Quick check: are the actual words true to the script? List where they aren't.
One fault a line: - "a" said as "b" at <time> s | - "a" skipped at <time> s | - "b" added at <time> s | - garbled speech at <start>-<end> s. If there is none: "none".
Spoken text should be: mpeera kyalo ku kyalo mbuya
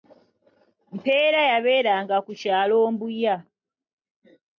- "kyalo" said as "yabeeranga" at 1.5 s